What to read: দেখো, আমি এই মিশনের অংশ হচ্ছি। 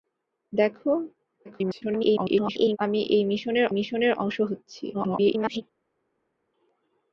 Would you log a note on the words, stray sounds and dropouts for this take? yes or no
yes